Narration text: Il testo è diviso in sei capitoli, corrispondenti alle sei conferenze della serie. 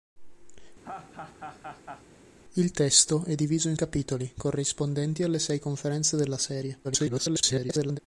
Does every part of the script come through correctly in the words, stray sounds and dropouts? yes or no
no